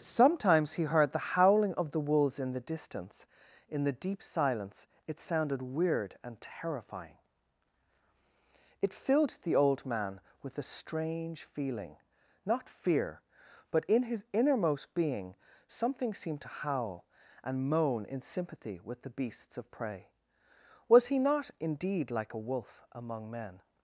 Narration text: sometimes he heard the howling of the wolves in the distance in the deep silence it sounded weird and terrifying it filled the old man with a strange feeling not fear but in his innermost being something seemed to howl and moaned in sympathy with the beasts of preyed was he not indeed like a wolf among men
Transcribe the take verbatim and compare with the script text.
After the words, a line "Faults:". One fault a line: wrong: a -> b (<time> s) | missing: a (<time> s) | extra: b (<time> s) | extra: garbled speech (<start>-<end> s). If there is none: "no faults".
sometimes he heard the howling of the wolves in the distance in the deep silence it sounded weird and terrifying it filled the old man with a strange feeling not fear but in his innermost being something seemed to howl and moan in sympathy with the beasts of prey was he not indeed like a wolf among men
Faults:
wrong: moaned -> moan (17.7 s)
wrong: preyed -> prey (19.7 s)